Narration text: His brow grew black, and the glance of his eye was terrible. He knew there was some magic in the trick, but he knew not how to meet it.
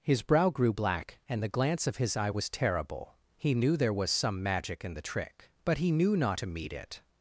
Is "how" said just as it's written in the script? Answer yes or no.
no